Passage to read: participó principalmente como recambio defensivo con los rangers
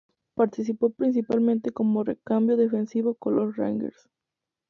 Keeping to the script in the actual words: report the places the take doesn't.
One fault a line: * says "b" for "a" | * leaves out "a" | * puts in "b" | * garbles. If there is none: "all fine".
all fine